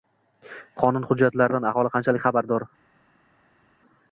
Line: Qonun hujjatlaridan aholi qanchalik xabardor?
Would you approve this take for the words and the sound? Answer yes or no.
yes